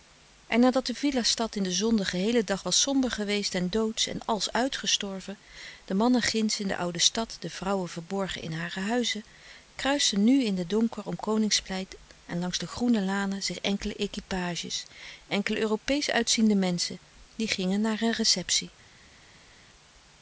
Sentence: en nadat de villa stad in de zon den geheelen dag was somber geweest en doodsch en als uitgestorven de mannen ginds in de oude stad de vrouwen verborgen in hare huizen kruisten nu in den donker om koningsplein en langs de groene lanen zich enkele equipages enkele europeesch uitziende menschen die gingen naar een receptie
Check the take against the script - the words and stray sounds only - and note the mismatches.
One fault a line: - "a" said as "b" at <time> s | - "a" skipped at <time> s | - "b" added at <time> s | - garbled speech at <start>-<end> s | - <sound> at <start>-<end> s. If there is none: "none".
none